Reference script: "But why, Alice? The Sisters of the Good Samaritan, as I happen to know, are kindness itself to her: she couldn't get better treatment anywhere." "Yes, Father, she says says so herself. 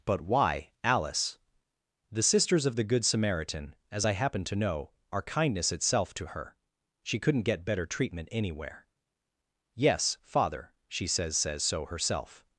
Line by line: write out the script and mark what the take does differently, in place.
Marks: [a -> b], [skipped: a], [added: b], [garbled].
"But why, Alice? The Sisters of the Good Samaritan, as I happen to know, are kindness itself to her: she couldn't get better treatment anywhere." "Yes, Father, she says says so herself.